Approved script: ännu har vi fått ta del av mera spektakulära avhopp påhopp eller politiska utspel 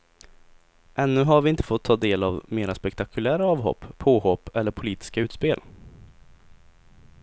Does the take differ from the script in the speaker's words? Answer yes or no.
yes